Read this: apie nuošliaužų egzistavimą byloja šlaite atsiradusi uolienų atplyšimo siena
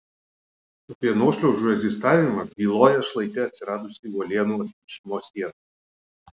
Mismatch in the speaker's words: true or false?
false